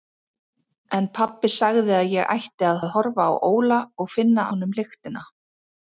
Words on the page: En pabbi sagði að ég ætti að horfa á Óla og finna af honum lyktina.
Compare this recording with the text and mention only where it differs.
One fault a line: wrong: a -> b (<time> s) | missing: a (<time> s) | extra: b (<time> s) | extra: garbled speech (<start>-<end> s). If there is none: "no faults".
extra: að (2.8 s)
missing: af (4.5 s)